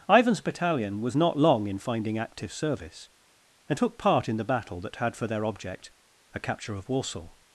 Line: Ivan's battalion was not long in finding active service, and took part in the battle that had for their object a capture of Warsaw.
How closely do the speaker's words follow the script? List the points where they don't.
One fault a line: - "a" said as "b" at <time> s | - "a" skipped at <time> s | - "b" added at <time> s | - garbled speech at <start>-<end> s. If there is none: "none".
none